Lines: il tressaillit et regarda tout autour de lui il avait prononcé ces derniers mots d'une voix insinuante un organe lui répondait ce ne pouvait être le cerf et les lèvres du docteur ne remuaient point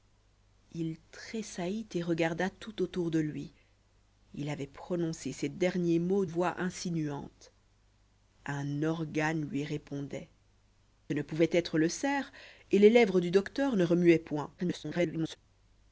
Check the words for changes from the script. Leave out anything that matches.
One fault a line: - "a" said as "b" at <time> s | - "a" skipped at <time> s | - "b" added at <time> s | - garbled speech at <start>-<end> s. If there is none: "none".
- "d'une" skipped at 6.2 s
- "ce" skipped at 10.3 s
- garbled speech at 14.6-15.4 s